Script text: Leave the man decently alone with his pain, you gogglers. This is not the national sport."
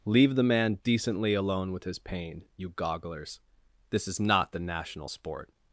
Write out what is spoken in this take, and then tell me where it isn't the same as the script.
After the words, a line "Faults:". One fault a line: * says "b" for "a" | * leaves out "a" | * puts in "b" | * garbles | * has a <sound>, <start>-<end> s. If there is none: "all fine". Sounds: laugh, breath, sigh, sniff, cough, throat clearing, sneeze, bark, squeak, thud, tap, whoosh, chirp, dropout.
Leave the man decently alone with his pain, you gogglers. This is not the national sport."
Faults:
all fine